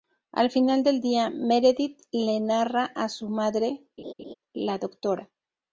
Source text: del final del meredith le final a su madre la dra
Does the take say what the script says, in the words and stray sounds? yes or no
no